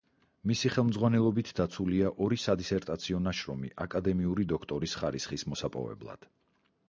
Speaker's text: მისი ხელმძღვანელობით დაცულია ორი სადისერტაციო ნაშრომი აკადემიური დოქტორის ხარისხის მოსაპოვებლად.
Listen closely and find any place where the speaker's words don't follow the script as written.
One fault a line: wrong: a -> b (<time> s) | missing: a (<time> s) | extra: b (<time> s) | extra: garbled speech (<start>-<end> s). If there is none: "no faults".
no faults